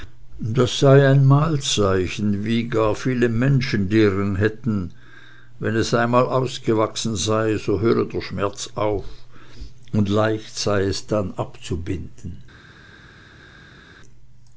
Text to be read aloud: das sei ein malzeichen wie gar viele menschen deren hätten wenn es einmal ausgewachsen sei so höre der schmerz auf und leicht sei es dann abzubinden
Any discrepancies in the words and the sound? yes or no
no